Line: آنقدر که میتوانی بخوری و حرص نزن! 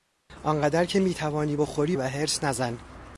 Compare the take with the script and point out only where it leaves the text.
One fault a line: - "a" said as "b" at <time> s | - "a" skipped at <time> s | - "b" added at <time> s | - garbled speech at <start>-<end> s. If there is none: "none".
none